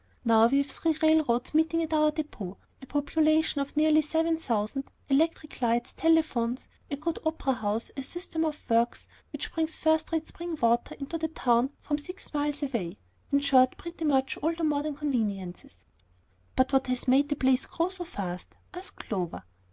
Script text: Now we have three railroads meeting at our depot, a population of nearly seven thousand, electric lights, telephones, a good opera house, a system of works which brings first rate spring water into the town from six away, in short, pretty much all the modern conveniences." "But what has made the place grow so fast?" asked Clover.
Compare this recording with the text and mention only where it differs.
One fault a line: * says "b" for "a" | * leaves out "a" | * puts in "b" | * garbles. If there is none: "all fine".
* puts in "miles"